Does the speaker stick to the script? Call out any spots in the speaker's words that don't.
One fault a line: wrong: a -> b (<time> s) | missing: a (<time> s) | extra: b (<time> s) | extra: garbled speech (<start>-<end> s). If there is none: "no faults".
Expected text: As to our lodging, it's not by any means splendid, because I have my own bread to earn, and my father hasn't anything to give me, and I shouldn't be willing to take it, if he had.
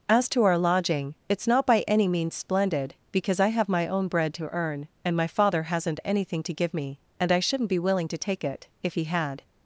no faults